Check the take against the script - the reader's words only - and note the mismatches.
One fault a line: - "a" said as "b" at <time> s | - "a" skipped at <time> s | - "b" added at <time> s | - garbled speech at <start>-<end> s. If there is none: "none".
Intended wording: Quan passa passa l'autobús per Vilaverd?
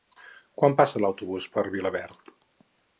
- "passa" skipped at 1.0 s